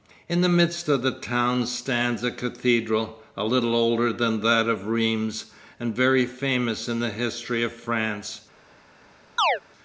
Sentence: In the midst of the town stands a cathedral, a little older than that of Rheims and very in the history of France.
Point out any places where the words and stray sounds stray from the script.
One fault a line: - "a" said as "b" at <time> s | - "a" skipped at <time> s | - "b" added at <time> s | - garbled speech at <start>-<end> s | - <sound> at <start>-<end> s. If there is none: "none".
- "famous" added at 6.2 s
- chirp at 9.4-9.6 s